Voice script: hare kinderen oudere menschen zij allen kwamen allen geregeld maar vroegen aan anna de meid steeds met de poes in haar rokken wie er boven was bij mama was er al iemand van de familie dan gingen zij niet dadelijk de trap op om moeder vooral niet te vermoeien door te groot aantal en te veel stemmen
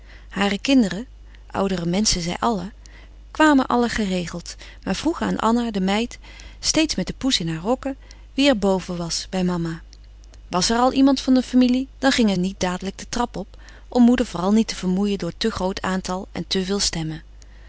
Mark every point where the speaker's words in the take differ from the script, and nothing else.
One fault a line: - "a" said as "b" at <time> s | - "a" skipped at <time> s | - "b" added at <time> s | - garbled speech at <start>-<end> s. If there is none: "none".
- "zij" skipped at 12.4 s